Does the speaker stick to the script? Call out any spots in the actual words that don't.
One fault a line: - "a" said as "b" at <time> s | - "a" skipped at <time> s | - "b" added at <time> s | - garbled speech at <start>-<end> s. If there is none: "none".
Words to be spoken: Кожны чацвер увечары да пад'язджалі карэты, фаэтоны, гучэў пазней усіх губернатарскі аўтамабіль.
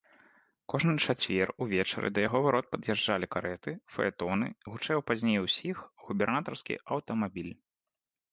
- "яго варот" added at 2.3 s